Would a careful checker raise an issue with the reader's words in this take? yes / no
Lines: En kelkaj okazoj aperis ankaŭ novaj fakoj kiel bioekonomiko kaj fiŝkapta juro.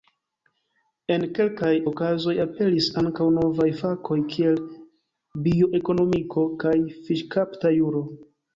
no